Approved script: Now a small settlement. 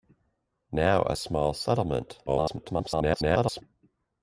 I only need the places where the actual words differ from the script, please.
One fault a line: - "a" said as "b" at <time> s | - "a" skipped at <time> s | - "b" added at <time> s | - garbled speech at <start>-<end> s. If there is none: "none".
- garbled speech at 2.3-3.6 s